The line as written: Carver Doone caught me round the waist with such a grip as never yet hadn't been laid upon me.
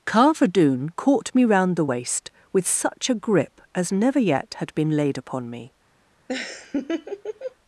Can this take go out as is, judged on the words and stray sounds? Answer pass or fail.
fail